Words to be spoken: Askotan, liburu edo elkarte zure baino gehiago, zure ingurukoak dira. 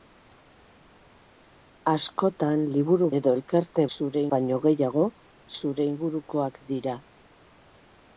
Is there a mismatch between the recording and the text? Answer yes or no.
no